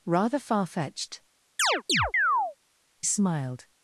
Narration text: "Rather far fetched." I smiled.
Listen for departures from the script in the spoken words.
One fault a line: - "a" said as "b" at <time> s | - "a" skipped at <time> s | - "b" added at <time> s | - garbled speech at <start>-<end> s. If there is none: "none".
- "I" skipped at 1.2 s